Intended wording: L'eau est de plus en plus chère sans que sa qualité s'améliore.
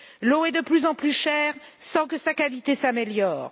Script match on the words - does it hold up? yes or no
yes